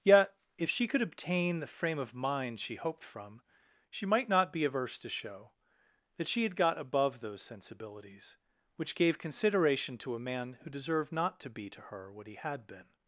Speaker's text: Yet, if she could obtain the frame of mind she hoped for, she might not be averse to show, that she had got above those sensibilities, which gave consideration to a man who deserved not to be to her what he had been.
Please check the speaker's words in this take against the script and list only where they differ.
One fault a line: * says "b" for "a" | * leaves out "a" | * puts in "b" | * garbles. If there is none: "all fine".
* says "from" for "for"